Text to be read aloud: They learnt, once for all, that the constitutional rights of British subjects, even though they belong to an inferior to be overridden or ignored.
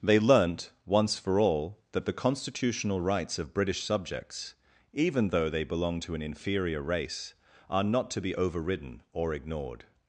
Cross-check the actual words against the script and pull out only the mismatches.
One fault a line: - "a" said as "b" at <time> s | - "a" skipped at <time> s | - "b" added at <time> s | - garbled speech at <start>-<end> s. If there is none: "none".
- "race are not" added at 6.8 s